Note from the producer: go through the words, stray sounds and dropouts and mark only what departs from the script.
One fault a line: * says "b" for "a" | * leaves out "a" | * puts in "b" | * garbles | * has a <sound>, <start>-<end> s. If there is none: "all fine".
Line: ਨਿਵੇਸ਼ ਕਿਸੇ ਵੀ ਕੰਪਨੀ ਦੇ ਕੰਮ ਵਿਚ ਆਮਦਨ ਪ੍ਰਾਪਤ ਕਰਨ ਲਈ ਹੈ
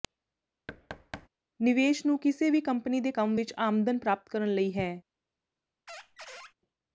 * has a thud, 0.7-1.3 s
* puts in "ਨੂੰ"
* has a squeak, 5.9-6.5 s